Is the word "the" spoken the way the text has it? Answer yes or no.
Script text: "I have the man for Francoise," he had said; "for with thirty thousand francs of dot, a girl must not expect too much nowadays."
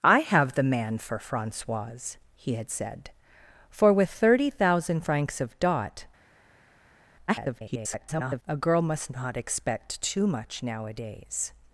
yes